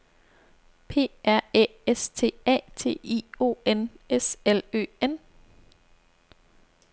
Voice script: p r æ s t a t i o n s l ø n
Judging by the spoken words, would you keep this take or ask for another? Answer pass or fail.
pass